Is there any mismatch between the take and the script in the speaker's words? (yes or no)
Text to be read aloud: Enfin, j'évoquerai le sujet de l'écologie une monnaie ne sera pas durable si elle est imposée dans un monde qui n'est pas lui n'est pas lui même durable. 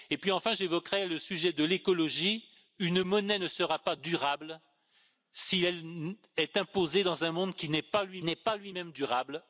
no